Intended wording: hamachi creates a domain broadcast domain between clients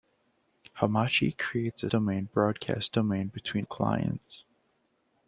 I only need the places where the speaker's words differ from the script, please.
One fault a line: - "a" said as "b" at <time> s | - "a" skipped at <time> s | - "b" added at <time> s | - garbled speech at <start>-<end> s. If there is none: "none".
none